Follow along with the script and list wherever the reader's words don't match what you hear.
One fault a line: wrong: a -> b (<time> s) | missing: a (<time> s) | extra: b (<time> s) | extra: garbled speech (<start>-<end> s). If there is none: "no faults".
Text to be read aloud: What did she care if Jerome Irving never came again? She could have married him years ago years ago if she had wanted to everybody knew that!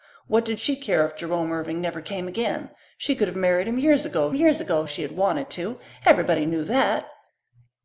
no faults